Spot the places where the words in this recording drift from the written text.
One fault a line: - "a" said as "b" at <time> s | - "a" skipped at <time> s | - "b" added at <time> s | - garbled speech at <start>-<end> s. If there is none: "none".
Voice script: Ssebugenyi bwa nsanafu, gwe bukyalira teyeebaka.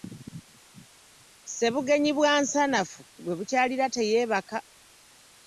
none